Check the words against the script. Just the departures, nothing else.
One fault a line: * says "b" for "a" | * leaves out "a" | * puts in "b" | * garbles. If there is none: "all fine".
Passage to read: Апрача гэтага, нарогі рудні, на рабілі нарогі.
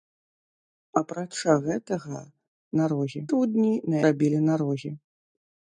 all fine